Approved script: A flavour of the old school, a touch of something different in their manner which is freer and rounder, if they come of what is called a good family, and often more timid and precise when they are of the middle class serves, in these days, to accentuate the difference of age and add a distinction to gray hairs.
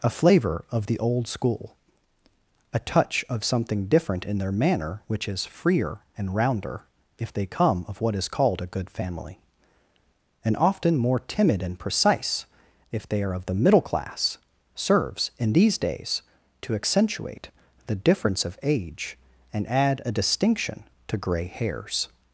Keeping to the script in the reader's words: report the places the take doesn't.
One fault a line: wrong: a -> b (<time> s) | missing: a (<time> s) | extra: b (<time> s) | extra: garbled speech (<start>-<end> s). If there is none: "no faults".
wrong: when -> if (12.9 s)